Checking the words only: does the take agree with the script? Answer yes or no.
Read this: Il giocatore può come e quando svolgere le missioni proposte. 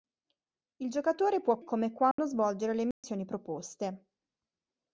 yes